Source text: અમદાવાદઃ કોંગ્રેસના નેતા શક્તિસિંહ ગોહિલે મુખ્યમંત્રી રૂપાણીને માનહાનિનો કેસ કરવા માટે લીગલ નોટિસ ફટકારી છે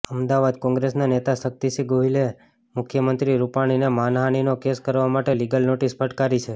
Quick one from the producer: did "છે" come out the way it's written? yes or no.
yes